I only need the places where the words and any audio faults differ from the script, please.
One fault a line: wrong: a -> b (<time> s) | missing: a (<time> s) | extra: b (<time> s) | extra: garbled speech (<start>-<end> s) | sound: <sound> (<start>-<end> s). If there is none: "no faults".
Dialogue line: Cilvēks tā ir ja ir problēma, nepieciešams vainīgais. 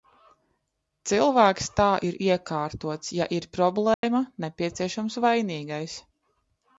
extra: iekārtots (2.3 s)
sound: dropout (3.9-4.0 s)